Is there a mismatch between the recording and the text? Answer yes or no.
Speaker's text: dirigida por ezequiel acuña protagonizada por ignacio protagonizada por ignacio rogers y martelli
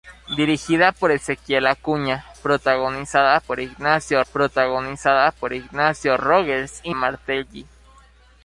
no